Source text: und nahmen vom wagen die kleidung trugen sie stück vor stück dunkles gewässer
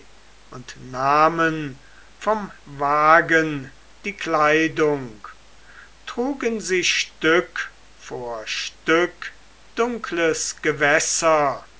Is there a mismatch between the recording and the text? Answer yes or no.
no